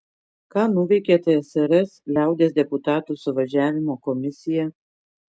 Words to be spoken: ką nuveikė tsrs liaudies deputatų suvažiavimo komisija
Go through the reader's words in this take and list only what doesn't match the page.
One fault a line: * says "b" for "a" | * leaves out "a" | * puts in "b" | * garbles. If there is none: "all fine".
all fine